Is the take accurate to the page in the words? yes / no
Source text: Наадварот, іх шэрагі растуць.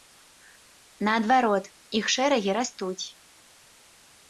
yes